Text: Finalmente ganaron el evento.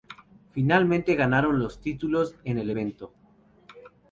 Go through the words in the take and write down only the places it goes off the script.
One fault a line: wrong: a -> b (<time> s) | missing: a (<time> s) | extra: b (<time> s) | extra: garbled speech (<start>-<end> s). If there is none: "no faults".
extra: los títulos en (1.6 s)